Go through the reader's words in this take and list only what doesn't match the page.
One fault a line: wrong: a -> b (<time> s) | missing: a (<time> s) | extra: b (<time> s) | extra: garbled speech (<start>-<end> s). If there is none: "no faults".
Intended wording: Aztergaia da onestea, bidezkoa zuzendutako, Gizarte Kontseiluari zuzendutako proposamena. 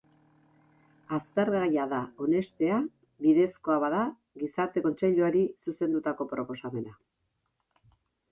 wrong: zuzendutako -> bada (3.8 s)